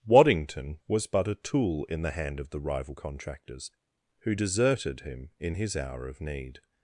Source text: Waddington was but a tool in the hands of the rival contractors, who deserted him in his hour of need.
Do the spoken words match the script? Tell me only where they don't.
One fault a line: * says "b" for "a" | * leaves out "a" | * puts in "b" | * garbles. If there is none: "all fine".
* says "hand" for "hands"